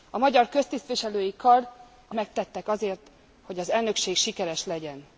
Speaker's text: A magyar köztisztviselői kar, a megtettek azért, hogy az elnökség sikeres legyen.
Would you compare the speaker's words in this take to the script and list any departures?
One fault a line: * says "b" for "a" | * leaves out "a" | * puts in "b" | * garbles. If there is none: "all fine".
all fine